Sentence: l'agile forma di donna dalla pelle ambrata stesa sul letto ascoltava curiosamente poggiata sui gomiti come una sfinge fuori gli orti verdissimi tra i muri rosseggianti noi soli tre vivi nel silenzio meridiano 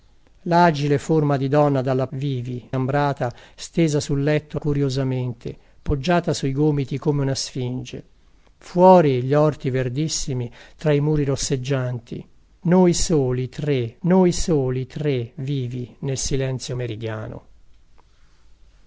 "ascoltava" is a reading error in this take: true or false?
true